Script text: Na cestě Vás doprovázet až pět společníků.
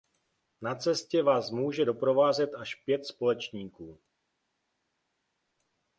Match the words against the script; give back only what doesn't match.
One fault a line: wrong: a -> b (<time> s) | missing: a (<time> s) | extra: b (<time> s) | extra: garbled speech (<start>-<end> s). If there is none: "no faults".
extra: může (1.5 s)